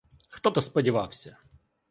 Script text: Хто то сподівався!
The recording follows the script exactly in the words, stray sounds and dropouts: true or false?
true